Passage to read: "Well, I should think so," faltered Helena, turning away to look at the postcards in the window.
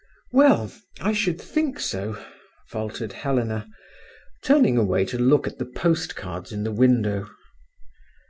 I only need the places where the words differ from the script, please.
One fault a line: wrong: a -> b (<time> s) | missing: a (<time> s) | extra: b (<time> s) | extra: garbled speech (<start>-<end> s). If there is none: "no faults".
no faults